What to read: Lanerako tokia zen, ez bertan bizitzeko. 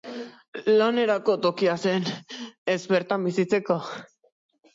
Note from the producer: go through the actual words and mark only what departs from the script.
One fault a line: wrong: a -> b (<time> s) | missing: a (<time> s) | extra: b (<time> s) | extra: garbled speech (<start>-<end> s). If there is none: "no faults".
no faults